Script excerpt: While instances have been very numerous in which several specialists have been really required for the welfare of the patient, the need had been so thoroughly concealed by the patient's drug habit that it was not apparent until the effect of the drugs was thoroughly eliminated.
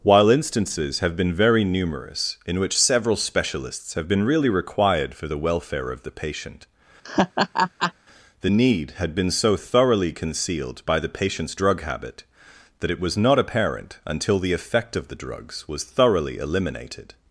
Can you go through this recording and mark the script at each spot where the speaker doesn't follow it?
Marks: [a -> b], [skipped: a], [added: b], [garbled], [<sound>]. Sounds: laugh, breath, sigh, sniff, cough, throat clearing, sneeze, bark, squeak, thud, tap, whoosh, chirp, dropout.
While instances have been very numerous in which several specialists have been really required for the welfare of the patient, [laugh] the need had been so thoroughly concealed by the patient's drug habit that it was not apparent until the effect of the drugs was thoroughly eliminated.